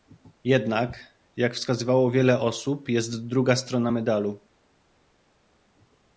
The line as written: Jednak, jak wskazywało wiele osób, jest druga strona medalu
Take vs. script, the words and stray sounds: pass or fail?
pass